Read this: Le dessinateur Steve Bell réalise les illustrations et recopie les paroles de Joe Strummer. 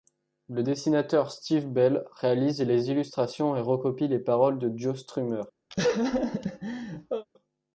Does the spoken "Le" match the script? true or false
true